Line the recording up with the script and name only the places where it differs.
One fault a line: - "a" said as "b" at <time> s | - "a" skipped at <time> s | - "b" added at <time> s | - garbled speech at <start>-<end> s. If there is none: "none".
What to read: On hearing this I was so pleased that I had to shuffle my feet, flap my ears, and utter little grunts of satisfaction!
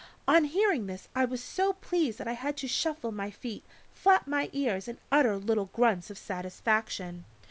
none